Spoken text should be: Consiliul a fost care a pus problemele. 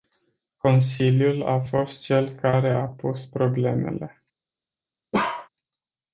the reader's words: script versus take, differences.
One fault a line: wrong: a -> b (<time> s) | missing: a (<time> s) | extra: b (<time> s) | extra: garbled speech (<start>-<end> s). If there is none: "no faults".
extra: cel (2.0 s)